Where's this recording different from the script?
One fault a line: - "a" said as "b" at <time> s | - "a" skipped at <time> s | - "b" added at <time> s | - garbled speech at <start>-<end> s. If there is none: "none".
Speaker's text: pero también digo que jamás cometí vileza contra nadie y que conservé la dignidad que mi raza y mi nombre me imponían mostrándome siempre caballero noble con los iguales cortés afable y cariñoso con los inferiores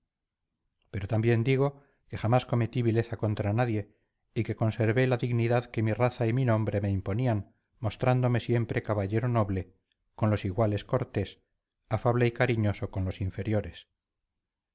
none